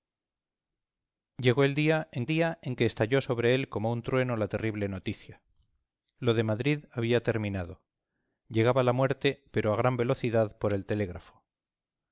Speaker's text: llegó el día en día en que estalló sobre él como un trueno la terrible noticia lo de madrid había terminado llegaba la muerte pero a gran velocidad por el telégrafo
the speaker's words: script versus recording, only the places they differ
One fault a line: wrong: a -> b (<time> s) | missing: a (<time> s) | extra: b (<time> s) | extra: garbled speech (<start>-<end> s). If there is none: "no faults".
no faults